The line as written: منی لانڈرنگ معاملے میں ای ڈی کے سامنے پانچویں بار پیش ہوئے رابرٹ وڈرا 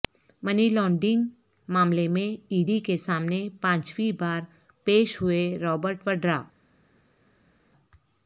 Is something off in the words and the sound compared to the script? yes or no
no